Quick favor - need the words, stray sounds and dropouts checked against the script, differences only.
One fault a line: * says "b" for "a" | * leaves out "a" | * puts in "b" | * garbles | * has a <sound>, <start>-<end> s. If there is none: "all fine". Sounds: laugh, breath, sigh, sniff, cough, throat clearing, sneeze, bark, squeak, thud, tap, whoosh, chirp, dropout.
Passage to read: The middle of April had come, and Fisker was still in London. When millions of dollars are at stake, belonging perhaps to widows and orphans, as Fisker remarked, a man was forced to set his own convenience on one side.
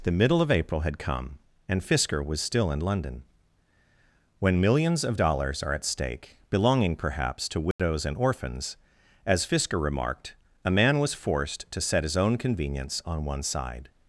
* has a dropout, 7.7-7.8 s